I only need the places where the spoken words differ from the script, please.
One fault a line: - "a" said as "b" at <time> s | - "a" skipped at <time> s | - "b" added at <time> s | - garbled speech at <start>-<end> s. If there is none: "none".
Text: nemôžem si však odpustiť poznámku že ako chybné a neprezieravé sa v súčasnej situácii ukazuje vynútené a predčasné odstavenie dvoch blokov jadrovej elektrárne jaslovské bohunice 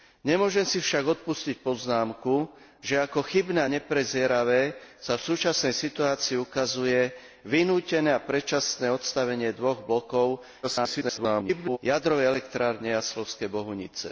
- garbled speech at 10.6-11.8 s